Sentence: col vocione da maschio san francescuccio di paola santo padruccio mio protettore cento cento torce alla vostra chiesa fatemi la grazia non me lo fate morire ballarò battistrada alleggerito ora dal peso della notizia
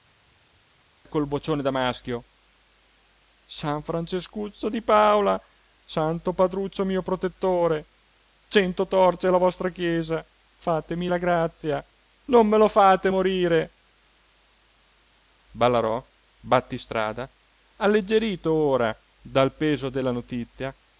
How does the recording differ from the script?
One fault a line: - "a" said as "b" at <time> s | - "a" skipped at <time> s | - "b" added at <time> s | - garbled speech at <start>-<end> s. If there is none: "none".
- "cento" skipped at 8.9 s